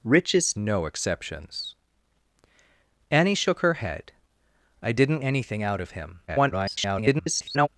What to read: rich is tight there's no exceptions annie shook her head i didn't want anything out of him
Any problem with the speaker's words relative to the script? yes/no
yes